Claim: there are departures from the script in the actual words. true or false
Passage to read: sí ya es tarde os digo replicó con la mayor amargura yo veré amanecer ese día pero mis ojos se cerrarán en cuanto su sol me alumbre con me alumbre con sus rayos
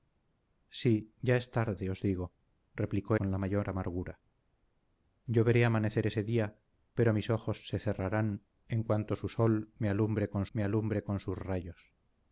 false